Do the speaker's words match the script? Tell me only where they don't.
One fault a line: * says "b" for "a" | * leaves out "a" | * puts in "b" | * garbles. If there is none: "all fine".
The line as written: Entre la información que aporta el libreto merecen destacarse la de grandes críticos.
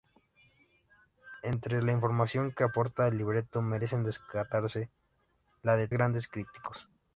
all fine